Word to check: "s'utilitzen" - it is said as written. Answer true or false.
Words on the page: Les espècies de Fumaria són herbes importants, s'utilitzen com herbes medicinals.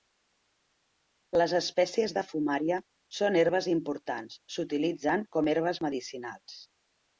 true